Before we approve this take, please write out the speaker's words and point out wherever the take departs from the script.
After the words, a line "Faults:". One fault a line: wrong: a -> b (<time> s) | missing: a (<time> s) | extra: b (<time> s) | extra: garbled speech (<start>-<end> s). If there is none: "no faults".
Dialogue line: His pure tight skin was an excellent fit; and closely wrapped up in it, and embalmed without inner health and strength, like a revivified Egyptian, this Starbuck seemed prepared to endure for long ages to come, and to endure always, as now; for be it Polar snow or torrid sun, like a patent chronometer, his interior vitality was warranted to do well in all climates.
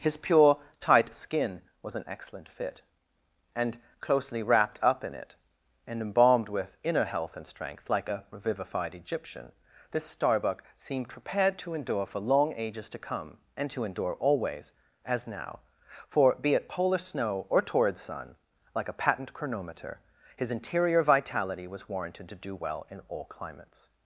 His pure tight skin was an excellent fit; and closely wrapped up in it, and embalmed with inner health and strength, like a revivified Egyptian, this Starbuck seemed prepared to endure for long ages to come, and to endure always, as now; for be it Polar snow or torrid sun, like a patent chronometer, his interior vitality was warranted to do well in all climates.
Faults:
wrong: without -> with (6.5 s)